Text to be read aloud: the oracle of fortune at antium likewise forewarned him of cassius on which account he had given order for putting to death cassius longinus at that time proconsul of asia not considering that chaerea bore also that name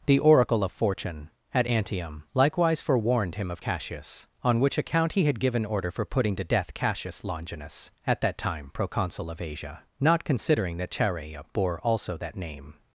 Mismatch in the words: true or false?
false